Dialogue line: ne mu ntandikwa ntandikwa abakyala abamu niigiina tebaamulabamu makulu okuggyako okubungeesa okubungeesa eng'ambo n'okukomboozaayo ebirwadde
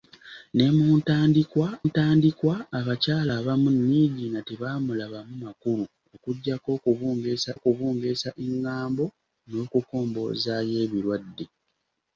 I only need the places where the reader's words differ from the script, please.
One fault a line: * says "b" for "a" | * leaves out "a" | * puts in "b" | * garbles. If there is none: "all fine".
all fine